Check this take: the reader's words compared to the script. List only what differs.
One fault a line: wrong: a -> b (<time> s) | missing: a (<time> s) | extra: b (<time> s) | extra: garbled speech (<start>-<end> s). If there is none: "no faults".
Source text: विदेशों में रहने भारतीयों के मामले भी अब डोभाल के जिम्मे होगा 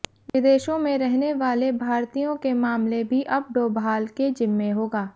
extra: वाले (1.3 s)